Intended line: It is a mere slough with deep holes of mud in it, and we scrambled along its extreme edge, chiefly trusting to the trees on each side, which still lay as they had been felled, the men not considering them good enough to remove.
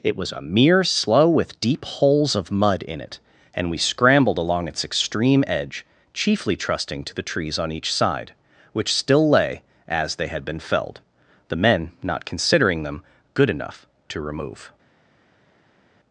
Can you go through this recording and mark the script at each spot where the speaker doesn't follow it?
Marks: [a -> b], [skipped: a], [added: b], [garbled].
It [is -> was] a mere slough with deep holes of mud in it, and we scrambled along its extreme edge, chiefly trusting to the trees on each side, which still lay as they had been felled, the men not considering them good enough to remove.